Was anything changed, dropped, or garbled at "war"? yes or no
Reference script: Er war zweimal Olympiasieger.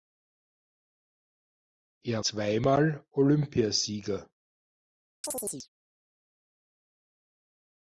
yes